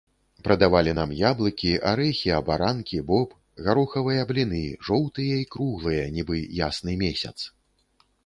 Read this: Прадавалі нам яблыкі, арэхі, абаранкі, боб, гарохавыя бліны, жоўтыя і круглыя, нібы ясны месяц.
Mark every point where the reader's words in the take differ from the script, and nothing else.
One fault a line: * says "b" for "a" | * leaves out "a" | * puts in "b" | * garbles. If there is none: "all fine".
all fine